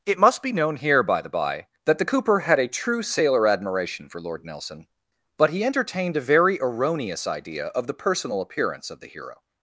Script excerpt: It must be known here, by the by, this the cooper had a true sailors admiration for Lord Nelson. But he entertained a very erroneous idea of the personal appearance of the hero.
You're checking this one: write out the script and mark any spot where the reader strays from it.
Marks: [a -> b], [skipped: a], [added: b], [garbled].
It must be known here, by the by, [this -> that] the cooper had a true [sailors -> sailor] admiration for Lord Nelson. But he entertained a very erroneous idea of the personal appearance of the hero.